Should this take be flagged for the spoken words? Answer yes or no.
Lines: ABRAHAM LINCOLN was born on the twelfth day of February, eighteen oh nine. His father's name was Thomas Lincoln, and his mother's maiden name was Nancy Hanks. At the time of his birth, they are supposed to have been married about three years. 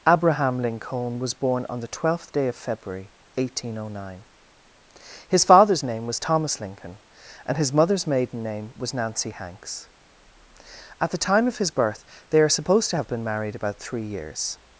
no